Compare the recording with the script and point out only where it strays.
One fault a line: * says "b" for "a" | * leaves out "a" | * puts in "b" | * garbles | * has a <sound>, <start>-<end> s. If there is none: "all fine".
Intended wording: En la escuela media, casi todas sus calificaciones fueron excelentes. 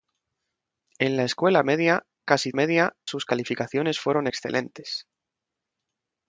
* says "media" for "todas"